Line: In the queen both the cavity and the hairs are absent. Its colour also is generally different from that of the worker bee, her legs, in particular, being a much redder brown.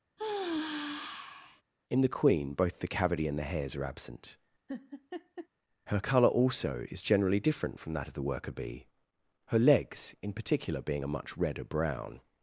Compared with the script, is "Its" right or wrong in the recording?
wrong